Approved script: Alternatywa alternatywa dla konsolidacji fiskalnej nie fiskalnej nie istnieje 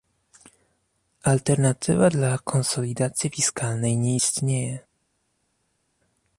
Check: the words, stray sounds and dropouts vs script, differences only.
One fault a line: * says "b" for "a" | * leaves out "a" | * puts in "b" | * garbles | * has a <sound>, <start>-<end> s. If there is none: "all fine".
* leaves out "alternatywa"
* leaves out "fiskalnej nie"